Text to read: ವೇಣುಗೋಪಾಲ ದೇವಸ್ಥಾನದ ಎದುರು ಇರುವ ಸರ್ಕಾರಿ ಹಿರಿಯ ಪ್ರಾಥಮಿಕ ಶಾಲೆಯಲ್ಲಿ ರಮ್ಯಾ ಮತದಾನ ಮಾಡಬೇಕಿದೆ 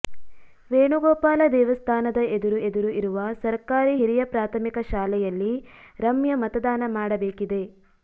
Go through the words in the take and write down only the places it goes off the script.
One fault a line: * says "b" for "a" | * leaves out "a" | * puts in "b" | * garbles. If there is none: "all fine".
* puts in "ಎದುರು"